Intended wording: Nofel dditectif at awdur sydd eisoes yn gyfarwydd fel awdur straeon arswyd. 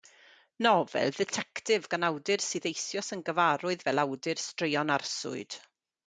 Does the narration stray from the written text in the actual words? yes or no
yes